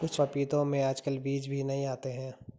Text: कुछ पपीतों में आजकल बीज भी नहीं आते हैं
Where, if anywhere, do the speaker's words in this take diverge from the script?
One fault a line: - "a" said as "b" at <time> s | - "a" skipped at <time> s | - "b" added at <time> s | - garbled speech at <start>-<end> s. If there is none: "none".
none